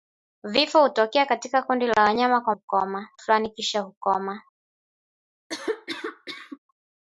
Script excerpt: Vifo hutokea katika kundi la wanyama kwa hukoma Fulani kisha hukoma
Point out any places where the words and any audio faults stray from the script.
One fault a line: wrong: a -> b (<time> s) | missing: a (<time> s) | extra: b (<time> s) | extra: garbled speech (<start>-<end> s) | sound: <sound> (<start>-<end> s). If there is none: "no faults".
sound: cough (5.5-6.6 s)